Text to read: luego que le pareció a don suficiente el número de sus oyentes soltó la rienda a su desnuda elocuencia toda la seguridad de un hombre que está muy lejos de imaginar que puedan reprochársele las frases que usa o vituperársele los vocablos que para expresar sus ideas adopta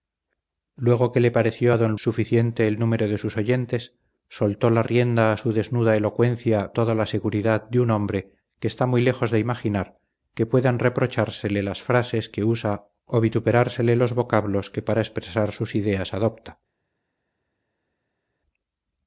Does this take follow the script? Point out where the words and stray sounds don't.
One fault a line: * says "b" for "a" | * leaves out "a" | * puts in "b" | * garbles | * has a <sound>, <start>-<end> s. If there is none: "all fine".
all fine